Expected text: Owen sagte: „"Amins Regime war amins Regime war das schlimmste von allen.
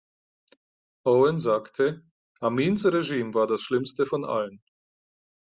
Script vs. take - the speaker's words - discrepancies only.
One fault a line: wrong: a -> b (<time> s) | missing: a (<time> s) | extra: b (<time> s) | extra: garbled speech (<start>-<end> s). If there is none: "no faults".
missing: amins Regime war (3.5 s)